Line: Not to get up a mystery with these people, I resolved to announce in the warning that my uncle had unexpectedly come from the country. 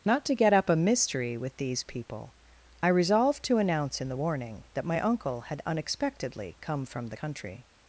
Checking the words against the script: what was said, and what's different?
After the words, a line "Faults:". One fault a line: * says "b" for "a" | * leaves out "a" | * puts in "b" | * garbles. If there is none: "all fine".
Not to get up a mystery with these people, I resolved to announce in the warning that my uncle had unexpectedly come from the country.
Faults:
all fine